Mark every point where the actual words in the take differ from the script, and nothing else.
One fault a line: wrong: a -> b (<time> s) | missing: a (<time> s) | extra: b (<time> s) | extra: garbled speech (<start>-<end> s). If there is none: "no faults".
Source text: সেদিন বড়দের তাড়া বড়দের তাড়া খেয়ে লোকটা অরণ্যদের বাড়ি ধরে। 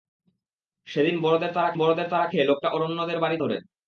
no faults